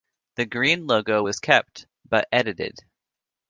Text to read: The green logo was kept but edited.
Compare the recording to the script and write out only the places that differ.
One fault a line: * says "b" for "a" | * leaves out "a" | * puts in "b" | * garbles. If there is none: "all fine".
all fine